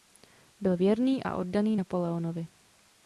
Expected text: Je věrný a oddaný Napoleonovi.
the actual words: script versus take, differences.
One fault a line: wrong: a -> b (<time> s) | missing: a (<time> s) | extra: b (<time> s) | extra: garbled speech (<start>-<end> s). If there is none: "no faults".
wrong: Je -> Byl (0.6 s)